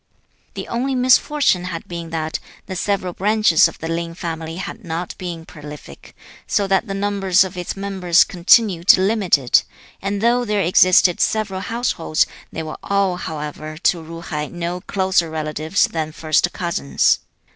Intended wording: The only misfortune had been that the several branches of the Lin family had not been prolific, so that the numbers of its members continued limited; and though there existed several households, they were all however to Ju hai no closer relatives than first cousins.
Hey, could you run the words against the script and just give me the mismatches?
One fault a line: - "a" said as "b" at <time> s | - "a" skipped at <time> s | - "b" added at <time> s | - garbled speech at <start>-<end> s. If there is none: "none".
none